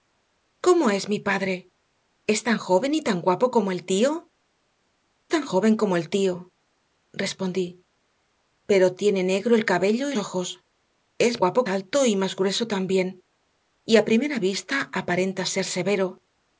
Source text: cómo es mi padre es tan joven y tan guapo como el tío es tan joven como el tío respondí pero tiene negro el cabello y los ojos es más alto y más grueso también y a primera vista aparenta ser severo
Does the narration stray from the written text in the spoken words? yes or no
yes